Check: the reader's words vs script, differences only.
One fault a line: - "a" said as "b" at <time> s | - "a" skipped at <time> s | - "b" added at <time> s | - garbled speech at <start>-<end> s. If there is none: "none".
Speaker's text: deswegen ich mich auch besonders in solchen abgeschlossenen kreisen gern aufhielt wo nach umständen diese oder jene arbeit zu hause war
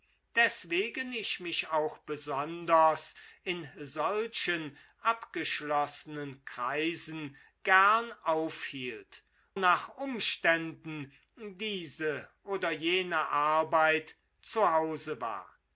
- "wo" skipped at 9.2 s